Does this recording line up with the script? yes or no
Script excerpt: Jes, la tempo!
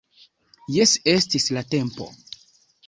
no